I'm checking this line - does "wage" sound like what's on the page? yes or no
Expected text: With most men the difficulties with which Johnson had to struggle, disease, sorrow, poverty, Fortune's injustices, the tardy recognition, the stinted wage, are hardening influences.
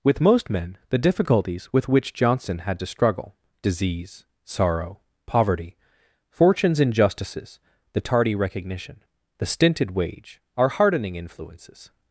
yes